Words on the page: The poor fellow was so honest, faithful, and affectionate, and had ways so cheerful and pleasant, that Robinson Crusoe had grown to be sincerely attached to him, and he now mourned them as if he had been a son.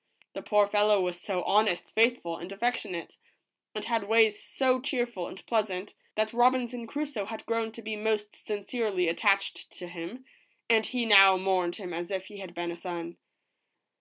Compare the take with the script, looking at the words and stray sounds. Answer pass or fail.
fail